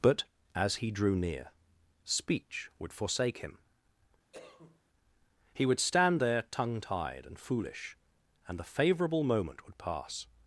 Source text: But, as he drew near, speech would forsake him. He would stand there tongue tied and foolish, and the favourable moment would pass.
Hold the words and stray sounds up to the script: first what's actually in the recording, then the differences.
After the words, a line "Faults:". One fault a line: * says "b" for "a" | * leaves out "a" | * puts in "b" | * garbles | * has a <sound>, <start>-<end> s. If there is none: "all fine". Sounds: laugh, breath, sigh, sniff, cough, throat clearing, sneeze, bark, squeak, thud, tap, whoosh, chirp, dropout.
But, as he drew near, speech would forsake him. He would stand there tongue tied and foolish, and the favourable moment would pass.
Faults:
* has a cough, 4.3-4.8 s